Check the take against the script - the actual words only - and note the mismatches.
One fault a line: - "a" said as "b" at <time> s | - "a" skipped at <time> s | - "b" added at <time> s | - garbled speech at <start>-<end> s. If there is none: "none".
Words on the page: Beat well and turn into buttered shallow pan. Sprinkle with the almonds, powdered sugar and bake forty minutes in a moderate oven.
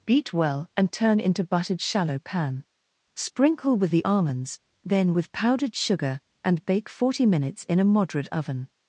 - "then with" added at 4.8 s